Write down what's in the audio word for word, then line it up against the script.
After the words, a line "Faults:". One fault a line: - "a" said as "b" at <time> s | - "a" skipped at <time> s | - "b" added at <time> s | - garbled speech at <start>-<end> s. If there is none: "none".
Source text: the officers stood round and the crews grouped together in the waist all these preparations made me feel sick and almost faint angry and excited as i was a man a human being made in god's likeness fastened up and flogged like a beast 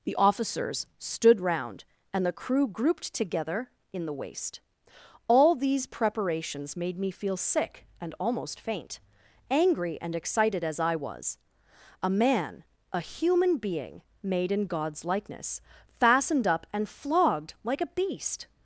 the officers stood round and the crew grouped together in the waist all these preparations made me feel sick and almost faint angry and excited as i was a man a human being made in god's likeness fastened up and flogged like a beast
Faults:
- "crews" said as "crew" at 2.3 s